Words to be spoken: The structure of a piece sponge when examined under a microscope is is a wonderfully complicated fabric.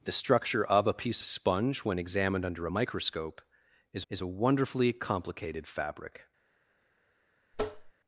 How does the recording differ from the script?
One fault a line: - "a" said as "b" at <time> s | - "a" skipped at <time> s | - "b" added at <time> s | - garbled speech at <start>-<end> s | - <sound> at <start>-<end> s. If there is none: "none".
- tap at 7.5-7.9 s